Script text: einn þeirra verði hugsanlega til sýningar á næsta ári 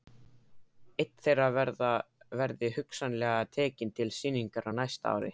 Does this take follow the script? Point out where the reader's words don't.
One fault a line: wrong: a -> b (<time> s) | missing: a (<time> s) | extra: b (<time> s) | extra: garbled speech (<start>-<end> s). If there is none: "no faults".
extra: tekinn (3.6 s)